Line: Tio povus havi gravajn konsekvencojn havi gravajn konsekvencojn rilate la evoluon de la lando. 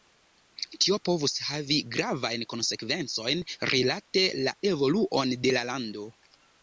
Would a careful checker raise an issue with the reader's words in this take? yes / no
yes